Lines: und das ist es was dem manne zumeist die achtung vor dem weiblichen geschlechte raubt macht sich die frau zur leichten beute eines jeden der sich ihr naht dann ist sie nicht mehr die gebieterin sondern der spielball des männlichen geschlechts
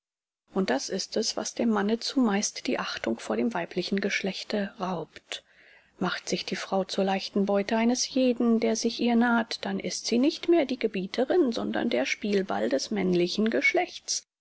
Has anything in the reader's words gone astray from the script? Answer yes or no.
no